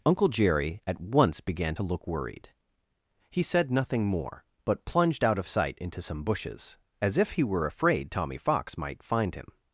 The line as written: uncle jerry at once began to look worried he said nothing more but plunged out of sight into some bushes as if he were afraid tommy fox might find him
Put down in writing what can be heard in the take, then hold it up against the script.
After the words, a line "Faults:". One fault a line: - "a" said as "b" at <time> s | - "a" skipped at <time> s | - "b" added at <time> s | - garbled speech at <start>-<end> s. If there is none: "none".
uncle jerry at once began to look worried he said nothing more but plunged out of sight into some bushes as if he were afraid tommy fox might find him
Faults:
none